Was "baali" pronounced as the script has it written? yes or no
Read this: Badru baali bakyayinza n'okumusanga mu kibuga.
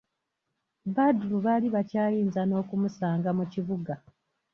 yes